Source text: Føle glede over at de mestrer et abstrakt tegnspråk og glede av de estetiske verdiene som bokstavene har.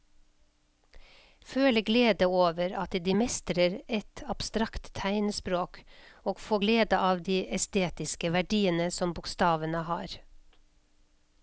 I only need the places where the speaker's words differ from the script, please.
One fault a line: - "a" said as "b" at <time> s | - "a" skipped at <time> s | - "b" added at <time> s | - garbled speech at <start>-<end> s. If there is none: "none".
- "få" added at 6.4 s